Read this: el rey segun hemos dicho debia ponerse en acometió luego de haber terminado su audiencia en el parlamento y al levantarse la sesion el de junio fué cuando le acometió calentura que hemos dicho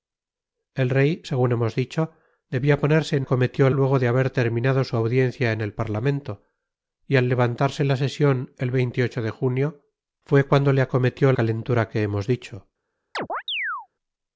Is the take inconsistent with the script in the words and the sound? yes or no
yes